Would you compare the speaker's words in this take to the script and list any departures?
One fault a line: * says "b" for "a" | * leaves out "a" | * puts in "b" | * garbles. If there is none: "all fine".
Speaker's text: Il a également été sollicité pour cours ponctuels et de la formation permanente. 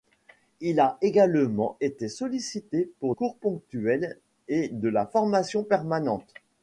all fine